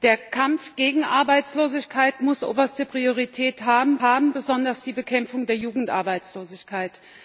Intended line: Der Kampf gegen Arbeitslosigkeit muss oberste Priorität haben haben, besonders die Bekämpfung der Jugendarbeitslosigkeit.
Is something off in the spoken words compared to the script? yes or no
no